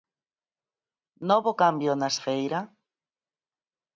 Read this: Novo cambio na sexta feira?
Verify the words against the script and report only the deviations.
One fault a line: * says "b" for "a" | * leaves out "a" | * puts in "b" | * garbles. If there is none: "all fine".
* leaves out "sexta"